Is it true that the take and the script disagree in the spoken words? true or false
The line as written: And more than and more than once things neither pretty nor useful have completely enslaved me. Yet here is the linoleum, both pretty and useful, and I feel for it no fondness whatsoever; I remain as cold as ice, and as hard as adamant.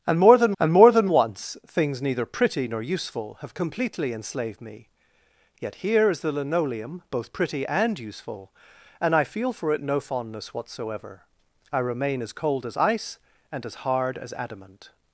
false